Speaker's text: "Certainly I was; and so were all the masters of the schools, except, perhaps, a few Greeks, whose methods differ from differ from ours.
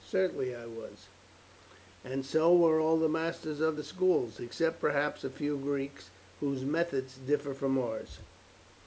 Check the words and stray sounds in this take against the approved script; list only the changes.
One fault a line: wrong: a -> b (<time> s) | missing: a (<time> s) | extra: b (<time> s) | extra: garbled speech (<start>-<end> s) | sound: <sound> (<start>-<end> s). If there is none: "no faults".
missing: differ from (7.8 s)